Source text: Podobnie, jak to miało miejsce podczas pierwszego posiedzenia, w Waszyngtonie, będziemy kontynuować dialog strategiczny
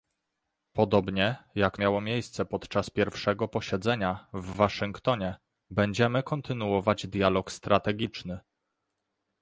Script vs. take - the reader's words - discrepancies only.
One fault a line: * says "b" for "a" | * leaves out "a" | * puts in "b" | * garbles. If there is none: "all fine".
* leaves out "to"